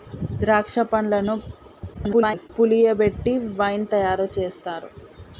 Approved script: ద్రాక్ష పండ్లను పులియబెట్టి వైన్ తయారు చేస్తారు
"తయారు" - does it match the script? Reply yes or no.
yes